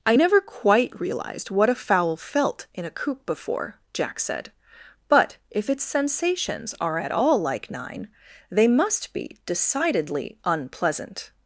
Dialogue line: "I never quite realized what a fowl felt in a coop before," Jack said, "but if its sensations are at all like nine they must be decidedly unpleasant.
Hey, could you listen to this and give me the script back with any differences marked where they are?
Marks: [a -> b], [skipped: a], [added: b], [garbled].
"I never quite realized what a fowl felt in a coop before," Jack said, "but if its sensations are at all like nine they must be decidedly unpleasant.